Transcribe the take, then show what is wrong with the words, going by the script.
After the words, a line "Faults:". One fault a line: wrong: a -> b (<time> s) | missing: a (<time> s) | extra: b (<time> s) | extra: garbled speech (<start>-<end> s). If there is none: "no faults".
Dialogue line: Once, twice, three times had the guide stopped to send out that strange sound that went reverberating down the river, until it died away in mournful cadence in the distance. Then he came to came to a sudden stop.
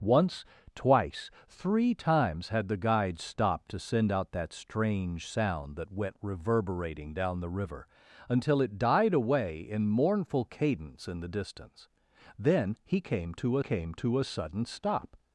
Once, twice, three times had the guide stopped to send out that strange sound that went reverberating down the river, until it died away in mournful cadence in the distance. Then he came to came to a sudden stop.
Faults:
no faults